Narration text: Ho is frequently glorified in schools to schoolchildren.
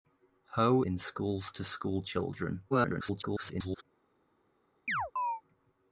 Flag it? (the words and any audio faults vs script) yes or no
yes